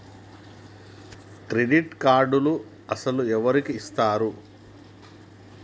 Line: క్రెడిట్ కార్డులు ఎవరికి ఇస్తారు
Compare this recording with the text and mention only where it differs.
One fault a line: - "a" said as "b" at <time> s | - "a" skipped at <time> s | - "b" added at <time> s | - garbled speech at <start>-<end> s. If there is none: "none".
- "అసలు" added at 2.9 s